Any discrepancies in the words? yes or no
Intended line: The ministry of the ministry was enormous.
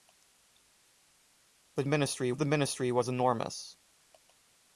no